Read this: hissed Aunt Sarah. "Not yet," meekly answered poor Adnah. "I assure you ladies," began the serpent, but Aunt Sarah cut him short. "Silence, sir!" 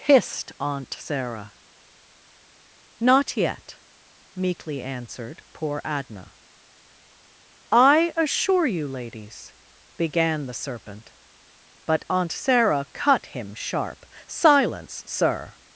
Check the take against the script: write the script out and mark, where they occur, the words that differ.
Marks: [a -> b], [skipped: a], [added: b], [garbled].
hissed Aunt Sarah. "Not yet," meekly answered poor Adnah. "I assure you ladies," began the serpent, but Aunt Sarah cut him [short. -> sharp] "Silence, sir!"